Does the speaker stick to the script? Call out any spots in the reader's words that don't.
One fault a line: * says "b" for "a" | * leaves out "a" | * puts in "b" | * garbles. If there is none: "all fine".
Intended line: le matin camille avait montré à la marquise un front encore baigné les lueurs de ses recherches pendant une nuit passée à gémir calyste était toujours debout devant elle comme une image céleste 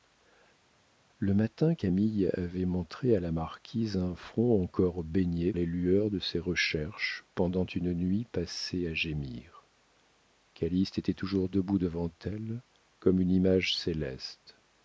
all fine